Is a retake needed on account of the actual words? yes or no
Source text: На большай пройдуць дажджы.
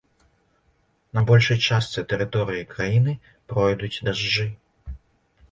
yes